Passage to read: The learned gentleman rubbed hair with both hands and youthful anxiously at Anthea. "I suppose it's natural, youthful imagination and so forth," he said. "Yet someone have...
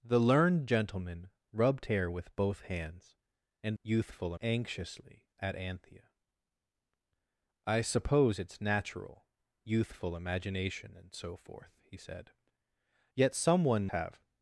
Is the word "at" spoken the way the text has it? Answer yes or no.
yes